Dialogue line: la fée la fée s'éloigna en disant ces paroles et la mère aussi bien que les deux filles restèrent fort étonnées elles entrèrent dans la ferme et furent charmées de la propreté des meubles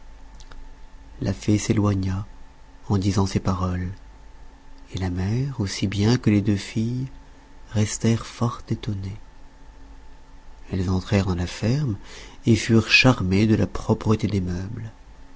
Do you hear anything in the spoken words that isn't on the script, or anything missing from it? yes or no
yes